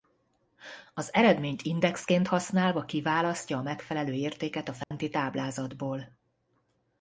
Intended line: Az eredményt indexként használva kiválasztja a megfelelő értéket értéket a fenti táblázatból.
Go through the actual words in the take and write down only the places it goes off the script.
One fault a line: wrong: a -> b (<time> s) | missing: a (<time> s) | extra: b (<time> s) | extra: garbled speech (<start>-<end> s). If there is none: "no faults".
missing: értéket (4.7 s)